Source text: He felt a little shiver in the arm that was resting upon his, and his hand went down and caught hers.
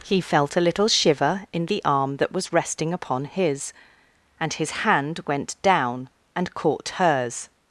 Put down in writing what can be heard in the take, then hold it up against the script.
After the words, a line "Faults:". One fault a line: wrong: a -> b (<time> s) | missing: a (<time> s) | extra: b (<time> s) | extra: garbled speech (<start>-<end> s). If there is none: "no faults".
He felt a little shiver in the arm that was resting upon his, and his hand went down and caught hers.
Faults:
no faults